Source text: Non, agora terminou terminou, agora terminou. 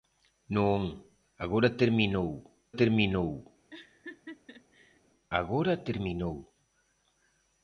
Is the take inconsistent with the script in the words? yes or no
no